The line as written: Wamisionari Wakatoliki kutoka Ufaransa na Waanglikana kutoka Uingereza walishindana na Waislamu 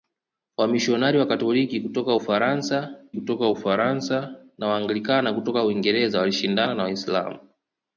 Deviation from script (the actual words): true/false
true